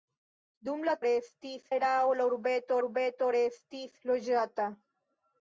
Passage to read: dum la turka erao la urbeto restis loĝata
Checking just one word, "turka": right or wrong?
wrong